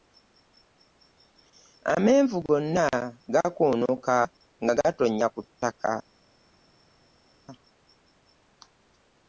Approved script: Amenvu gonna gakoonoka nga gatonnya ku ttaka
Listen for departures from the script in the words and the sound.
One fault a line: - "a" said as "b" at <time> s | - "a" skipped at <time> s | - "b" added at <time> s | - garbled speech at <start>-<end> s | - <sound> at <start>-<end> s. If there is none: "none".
none